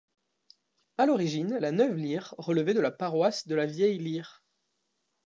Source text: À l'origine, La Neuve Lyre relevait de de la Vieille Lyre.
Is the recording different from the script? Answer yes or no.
yes